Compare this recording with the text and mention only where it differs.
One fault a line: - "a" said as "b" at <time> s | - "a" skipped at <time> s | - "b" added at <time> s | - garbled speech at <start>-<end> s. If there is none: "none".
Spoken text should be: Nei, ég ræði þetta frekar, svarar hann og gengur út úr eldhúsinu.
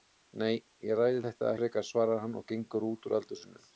none